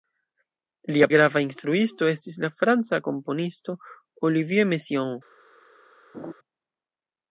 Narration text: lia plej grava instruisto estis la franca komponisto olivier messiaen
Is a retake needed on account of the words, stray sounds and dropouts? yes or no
yes